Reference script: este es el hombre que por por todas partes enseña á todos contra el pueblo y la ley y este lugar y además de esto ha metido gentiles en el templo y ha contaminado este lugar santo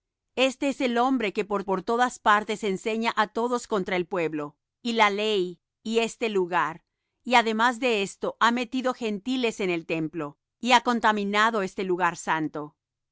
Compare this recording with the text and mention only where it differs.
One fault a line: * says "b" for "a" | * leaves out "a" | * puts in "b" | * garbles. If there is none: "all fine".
all fine